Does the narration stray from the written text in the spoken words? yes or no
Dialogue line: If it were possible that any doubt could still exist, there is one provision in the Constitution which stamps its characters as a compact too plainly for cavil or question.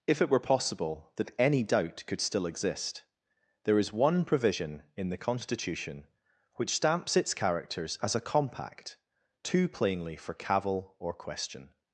no